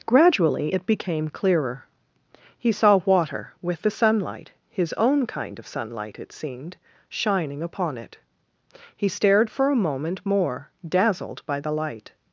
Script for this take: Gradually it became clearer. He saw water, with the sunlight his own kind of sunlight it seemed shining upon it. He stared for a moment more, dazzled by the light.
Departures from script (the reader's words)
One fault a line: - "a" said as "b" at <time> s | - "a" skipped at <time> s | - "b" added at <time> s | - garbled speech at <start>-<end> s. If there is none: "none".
none